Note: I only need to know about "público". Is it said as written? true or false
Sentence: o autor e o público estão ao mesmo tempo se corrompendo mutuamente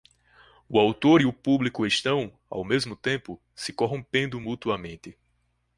true